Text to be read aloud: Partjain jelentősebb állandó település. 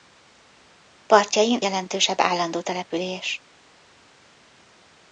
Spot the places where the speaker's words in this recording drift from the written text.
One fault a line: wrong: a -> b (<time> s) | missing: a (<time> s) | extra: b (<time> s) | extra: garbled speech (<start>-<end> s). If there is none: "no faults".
no faults